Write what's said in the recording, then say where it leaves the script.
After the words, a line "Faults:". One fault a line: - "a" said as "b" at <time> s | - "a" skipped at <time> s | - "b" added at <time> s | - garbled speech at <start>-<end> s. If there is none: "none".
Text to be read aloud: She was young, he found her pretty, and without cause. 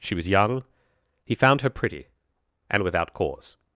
She was young, he found her pretty, and without cause.
Faults:
none